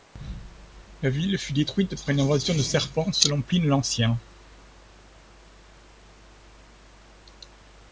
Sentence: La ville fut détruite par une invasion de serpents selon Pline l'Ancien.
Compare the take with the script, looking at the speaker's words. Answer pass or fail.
pass